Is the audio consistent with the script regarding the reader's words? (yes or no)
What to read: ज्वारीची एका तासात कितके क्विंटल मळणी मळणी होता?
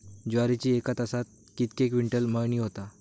no